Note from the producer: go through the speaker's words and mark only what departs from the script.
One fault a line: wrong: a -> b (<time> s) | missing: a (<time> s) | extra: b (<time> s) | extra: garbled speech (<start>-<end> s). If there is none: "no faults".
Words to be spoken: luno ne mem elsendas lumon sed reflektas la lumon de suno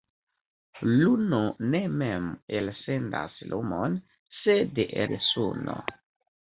missing: reflektas la lumon (4.8 s)